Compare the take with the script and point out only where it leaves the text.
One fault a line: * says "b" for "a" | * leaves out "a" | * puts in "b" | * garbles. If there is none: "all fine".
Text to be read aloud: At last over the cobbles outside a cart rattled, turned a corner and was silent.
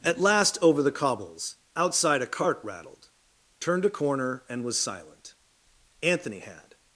* puts in "Anthony had"